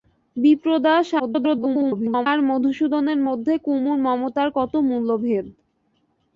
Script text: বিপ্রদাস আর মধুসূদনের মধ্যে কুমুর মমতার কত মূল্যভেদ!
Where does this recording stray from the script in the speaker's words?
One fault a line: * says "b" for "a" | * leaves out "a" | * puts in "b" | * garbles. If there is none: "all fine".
* garbles